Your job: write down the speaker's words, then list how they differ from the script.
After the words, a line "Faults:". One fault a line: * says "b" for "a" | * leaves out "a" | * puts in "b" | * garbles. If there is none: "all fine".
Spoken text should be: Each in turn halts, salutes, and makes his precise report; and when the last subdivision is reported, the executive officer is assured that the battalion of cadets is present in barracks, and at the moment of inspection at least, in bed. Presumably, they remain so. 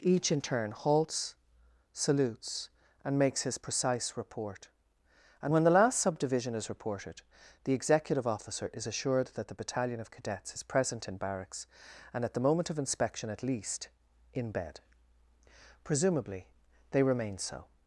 Each in turn halts, salutes, and makes his precise report; and when the last subdivision is reported, the executive officer is assured that the battalion of cadets is present in barracks, and at the moment of inspection at least, in bed. Presumably, they remain so.
Faults:
all fine